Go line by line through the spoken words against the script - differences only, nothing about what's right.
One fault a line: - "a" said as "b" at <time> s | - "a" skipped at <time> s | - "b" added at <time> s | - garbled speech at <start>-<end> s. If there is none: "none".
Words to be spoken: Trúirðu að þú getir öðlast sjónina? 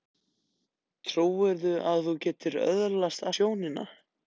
none